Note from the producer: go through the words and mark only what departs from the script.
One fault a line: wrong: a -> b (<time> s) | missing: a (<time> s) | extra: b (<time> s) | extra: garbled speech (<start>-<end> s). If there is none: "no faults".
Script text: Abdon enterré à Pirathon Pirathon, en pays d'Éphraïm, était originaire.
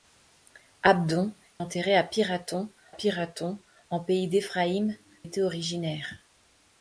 no faults